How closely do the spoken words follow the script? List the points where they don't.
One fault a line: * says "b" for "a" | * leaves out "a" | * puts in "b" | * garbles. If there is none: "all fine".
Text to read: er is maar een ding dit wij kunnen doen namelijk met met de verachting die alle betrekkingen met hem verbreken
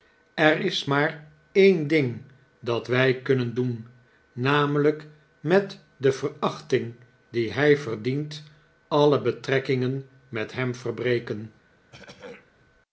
* says "dat" for "dit"
* leaves out "met"
* puts in "hij verdient"